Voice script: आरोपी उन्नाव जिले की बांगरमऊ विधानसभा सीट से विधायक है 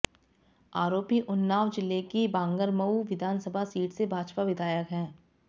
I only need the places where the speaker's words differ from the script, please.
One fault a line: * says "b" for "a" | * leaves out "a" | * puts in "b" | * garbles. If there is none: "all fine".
* puts in "भाजपा"